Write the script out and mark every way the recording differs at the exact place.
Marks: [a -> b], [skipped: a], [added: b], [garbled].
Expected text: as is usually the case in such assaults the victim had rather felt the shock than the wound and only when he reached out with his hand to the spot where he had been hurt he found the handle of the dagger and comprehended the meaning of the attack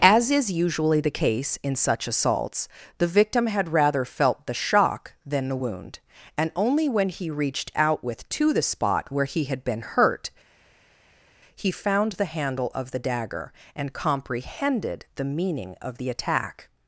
as is usually the case in such assaults the victim had rather felt the shock than the wound and only when he reached out with [skipped: his hand] to the spot where he had been hurt he found the handle of the dagger and comprehended the meaning of the attack